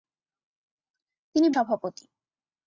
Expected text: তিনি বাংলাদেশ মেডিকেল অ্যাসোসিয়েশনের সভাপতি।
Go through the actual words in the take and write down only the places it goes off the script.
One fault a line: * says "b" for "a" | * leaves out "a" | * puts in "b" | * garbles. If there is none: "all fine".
* leaves out "বাংলাদেশ মেডিকেল অ্যাসোসিয়েশনের"